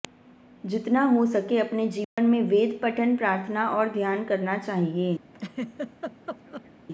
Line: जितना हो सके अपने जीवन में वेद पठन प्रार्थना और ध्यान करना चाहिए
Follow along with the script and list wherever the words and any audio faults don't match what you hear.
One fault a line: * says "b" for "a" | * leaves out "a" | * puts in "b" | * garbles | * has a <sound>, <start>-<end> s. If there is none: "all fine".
* has a dropout, 2.0-2.2 s
* has a laugh, 5.3-6.7 s